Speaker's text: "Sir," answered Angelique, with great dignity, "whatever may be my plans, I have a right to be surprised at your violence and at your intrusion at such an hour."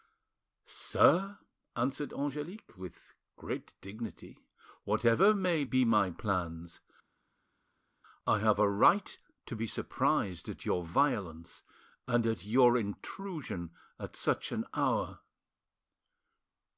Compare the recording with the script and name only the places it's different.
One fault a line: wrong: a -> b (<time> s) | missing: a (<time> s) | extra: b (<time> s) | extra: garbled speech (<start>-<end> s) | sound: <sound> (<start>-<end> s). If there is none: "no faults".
no faults